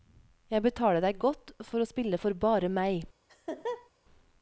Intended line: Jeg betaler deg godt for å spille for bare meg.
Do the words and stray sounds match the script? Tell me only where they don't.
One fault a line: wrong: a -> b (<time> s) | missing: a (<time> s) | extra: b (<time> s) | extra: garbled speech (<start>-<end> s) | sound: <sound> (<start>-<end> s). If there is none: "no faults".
sound: laugh (3.3-3.9 s)